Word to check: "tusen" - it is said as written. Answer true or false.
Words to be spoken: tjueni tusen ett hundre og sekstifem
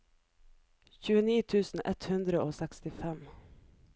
true